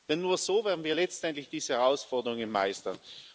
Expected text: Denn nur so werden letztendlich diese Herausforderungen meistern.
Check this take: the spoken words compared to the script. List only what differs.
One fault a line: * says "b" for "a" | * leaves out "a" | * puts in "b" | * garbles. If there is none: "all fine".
* puts in "wir"